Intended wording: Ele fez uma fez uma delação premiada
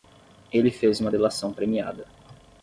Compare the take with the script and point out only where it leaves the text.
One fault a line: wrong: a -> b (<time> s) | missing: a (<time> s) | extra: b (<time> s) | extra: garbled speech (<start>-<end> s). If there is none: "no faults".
missing: fez uma (1.1 s)